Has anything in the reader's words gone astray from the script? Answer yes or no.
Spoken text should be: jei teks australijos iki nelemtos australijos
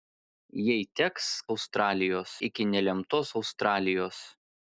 no